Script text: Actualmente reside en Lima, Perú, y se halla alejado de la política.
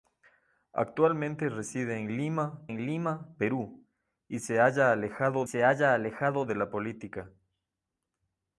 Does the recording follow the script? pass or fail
fail